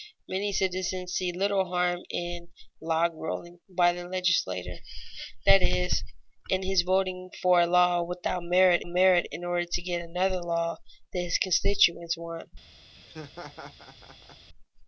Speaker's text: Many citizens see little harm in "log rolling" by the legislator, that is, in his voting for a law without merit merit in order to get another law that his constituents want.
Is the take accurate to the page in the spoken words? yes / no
yes